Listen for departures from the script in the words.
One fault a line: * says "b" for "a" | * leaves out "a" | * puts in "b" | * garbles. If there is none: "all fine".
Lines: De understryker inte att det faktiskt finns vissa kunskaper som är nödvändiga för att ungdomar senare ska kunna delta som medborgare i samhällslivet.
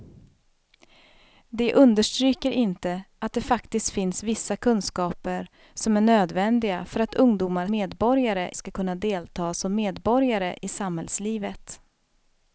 * says "medborgare" for "senare"